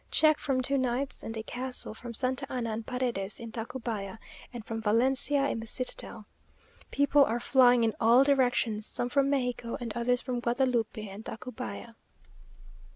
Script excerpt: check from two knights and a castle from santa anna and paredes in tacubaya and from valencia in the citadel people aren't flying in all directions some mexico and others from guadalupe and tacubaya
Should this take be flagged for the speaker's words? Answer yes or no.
yes